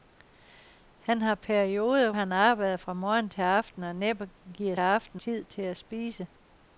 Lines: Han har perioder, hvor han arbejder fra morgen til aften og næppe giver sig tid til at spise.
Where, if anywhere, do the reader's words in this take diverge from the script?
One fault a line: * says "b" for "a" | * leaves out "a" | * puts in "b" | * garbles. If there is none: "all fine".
* leaves out "hvor"
* says "aften" for "sig"